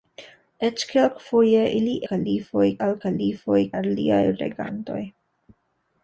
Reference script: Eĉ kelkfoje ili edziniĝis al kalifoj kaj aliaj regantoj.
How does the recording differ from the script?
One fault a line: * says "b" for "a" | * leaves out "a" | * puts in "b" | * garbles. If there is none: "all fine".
* says "kalifoj" for "edziniĝis"
* leaves out "kaj"